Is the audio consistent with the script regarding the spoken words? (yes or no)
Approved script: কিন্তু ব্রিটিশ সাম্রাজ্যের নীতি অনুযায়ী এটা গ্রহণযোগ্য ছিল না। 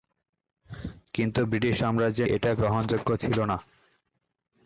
no